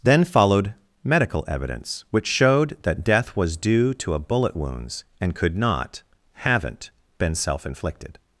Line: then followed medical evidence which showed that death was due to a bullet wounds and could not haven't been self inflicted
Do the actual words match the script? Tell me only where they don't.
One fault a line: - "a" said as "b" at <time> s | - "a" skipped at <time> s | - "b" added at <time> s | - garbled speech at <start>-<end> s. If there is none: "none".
none